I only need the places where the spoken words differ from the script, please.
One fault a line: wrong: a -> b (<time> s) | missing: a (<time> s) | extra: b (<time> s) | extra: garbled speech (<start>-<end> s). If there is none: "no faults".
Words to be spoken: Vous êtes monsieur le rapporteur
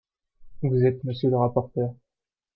no faults